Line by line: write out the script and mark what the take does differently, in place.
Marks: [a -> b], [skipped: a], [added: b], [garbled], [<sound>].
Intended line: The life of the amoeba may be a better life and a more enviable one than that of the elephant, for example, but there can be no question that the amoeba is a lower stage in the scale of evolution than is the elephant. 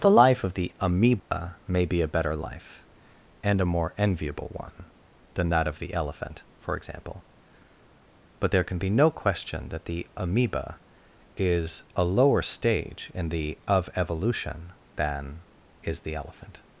The life of the amoeba [dropout] may be a better life and a more enviable one than that of the elephant, for example, but there can be no question that the amoeba is a lower stage in the [skipped: scale] of evolution than is the elephant.